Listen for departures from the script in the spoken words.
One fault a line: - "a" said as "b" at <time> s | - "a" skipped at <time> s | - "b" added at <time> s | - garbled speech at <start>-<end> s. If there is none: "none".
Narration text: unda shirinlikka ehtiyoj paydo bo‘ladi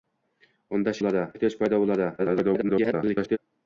- "shirinlikka" said as "bo‘ladi" at 1.0 s
- garbled speech at 2.2-3.4 s